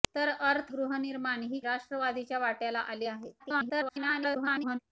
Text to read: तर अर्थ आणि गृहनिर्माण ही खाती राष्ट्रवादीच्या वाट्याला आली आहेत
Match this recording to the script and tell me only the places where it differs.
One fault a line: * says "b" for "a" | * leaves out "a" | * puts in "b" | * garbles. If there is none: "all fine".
* leaves out "आणि"
* leaves out "खाती"
* garbles